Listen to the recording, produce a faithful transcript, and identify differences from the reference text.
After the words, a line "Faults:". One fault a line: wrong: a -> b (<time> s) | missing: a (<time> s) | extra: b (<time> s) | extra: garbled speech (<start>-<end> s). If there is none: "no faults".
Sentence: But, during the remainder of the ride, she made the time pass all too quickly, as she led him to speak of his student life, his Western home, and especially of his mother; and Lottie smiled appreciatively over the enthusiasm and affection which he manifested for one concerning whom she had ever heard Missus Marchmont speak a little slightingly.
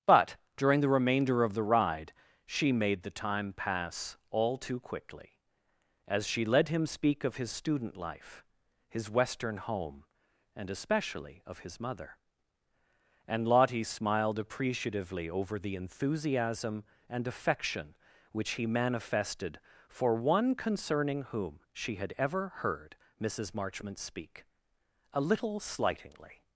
But, during the remainder of the ride, she made the time pass all too quickly, as she led him speak of his student life, his Western home, and especially of his mother; and Lottie smiled appreciatively over the enthusiasm and affection which he manifested for one concerning whom she had ever heard Missus Marchmont speak a little slightingly.
Faults:
missing: to (6.8 s)